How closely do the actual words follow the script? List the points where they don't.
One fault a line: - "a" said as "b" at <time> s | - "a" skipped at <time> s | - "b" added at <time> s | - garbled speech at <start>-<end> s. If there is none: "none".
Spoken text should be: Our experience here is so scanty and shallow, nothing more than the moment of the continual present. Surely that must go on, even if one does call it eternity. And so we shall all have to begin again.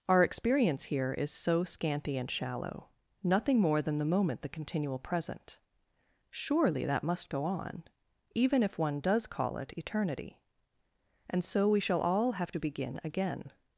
- "of" skipped at 4.4 s